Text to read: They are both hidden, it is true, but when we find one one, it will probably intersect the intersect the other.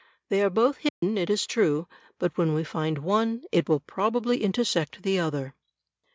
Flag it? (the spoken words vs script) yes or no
yes